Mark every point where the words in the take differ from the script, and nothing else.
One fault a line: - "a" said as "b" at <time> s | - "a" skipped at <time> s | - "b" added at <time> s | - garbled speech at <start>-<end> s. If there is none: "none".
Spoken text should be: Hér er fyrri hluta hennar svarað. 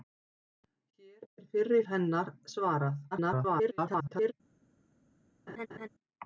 - "hluta" skipped at 1.8 s
- garbled speech at 3.1-4.3 s